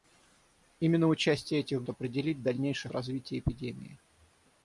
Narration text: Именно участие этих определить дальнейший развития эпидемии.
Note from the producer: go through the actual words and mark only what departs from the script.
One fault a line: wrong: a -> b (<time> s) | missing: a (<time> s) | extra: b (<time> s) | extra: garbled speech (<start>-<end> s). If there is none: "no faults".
no faults